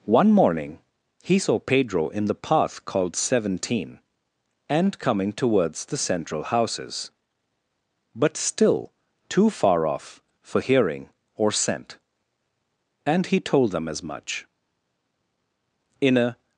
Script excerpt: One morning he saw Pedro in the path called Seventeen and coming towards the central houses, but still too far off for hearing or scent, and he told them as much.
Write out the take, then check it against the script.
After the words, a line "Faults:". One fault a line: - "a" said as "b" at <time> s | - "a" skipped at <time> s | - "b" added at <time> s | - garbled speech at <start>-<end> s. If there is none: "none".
One morning he saw Pedro in the path called Seventeen and coming towards the central houses, but still too far off for hearing or scent, and he told them as much. "In a
Faults:
- "In a" added at 16.0 s